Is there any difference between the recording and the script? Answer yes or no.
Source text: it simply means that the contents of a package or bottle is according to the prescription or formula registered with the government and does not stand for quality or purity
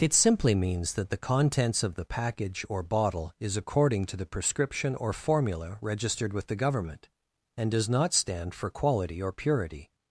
yes